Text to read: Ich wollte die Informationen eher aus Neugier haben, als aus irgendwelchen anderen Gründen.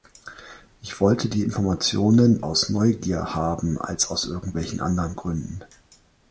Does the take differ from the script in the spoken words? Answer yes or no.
yes